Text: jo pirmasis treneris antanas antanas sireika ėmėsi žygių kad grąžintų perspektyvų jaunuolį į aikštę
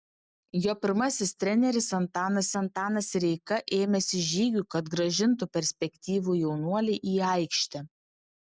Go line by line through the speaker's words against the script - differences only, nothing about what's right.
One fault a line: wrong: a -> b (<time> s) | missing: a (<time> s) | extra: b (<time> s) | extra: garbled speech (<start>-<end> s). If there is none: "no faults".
no faults